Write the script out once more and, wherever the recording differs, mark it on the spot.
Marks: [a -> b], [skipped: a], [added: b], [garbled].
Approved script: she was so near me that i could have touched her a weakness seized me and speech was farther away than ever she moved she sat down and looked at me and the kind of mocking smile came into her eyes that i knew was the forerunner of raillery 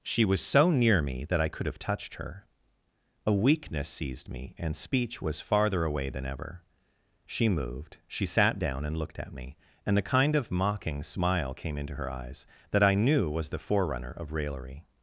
she was so near me that i could have touched her a weakness seized me and speech was farther away than ever she moved she sat down and looked at me and the kind of mocking smile came into her eyes that i knew was the forerunner of raillery